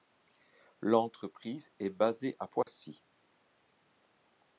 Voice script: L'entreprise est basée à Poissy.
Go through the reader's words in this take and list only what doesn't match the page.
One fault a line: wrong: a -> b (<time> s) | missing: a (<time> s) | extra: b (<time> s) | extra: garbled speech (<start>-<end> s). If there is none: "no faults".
no faults